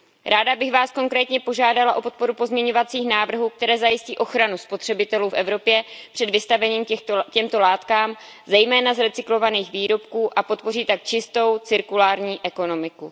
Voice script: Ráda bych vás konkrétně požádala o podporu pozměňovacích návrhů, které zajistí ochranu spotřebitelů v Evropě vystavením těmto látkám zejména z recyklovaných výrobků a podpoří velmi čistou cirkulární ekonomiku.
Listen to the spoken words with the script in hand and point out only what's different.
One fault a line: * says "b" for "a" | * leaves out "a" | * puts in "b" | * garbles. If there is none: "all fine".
* puts in "před"
* says "tak" for "velmi"